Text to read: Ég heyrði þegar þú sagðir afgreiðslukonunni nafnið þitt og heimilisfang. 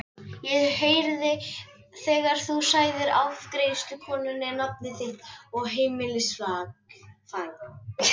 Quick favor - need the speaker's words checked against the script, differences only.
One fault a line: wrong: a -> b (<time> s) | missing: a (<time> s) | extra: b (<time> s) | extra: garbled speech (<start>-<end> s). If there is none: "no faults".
no faults